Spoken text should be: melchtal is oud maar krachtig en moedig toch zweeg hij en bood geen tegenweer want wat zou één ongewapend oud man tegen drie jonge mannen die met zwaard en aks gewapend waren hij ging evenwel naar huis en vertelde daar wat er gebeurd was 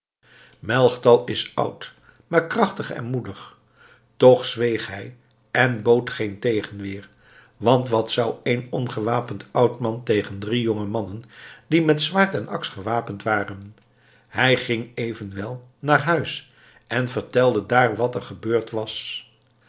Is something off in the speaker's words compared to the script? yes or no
no